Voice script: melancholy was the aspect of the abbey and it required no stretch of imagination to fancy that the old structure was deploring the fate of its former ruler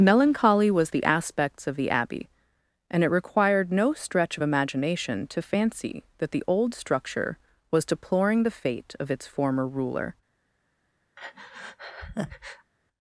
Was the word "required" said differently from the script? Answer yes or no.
no